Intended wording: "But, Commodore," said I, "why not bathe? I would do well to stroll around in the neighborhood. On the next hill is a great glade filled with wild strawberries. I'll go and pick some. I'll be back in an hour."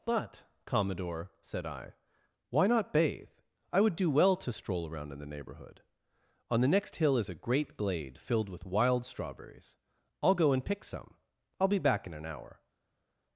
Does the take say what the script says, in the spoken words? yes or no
yes